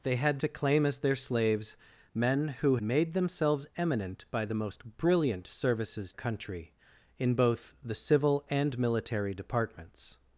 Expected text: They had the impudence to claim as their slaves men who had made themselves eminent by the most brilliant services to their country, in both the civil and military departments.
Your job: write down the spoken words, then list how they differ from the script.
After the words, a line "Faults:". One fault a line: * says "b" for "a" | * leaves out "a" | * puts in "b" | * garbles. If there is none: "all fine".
They had to claim as their slaves men who made themselves eminent by the most brilliant services country, in both the civil and military departments.
Faults:
* leaves out "the impudence"
* leaves out "had"
* leaves out "to their"